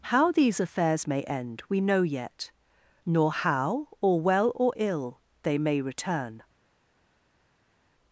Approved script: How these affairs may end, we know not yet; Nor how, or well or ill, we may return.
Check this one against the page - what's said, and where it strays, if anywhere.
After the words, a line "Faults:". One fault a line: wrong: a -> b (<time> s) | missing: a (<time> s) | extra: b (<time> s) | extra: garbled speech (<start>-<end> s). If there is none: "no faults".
How these affairs may end, we know yet; Nor how, or well or ill, they may return.
Faults:
missing: not (2.0 s)
wrong: we -> they (5.4 s)